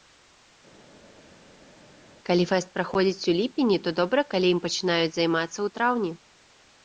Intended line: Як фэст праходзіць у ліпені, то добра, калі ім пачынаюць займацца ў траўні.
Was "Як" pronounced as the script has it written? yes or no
no